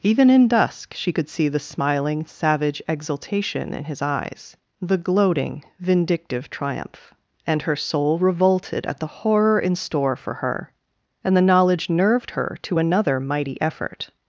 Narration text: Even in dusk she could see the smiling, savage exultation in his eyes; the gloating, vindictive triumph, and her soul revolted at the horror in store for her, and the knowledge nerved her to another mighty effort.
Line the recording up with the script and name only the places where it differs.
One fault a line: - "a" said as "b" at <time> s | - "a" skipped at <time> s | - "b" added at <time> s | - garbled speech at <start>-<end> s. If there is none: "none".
none